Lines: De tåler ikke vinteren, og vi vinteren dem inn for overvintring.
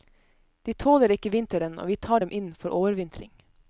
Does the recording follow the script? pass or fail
fail